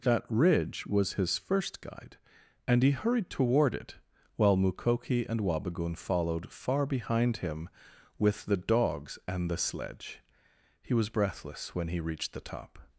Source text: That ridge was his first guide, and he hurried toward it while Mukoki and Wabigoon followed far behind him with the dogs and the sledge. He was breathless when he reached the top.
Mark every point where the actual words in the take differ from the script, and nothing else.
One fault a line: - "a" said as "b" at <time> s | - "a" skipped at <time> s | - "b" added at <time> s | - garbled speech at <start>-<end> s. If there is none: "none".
none